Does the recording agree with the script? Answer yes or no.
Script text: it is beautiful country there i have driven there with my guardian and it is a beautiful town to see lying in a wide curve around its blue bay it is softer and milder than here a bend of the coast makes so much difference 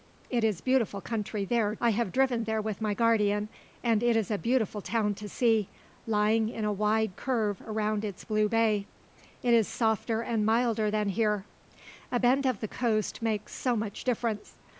yes